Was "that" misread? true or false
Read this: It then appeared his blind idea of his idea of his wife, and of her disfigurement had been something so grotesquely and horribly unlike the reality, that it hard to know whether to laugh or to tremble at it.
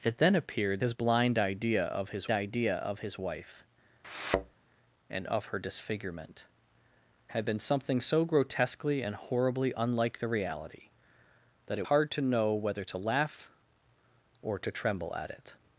false